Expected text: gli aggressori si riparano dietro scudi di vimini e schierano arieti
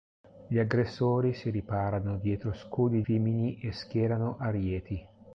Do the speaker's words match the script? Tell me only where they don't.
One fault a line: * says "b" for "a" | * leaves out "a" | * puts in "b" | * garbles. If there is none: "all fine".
* leaves out "di"